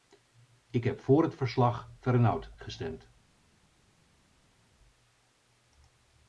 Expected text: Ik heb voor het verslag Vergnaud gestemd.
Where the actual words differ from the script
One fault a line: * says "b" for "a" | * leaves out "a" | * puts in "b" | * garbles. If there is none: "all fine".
all fine